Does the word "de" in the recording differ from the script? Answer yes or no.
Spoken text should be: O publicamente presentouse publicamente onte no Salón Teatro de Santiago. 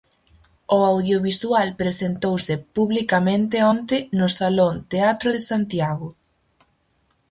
no